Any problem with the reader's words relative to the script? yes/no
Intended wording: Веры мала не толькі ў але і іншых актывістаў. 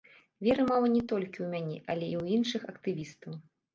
yes